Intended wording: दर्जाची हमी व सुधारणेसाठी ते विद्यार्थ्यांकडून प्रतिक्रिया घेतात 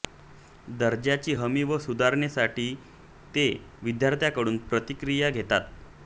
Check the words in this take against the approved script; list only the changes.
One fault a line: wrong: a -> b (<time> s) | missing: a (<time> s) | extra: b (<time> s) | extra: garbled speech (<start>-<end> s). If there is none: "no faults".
no faults